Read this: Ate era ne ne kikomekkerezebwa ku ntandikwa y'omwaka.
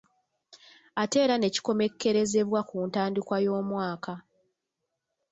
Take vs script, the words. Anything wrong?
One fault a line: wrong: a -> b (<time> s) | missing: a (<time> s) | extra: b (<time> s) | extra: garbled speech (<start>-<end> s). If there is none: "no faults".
missing: ne (1.5 s)